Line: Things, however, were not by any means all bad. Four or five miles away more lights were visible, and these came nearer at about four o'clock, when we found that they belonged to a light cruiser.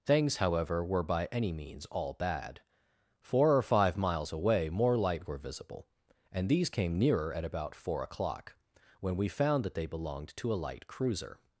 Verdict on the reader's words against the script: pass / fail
fail